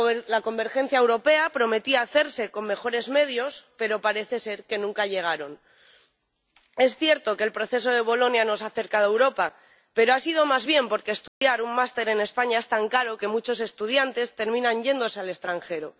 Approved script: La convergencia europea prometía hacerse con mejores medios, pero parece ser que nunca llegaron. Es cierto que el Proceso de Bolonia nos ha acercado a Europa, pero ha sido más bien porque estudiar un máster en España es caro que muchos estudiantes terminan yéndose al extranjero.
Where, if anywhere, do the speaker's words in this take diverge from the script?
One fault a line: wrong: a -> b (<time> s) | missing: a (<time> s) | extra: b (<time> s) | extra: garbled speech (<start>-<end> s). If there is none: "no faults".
extra: tan (12.7 s)